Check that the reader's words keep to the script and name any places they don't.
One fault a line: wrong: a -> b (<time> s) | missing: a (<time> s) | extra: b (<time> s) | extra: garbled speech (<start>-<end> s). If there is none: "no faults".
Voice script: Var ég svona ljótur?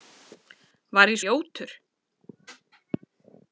missing: svona (1.2 s)